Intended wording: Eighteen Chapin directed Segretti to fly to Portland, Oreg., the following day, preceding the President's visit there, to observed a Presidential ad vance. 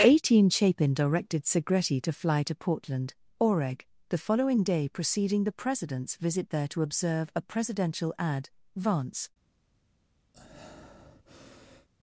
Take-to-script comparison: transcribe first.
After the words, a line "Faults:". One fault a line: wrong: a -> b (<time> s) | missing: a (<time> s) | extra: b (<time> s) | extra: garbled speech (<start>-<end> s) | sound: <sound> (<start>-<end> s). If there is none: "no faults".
Eighteen Chapin directed Segretti to fly to Portland, Oreg., the following day, preceding the President's visit there, to observe a Presidential ad vance.
Faults:
wrong: observed -> observe (6.8 s)
sound: breath (10.3-11.9 s)